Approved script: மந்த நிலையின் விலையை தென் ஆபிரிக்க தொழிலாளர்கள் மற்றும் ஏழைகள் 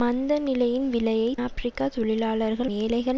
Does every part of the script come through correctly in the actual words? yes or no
no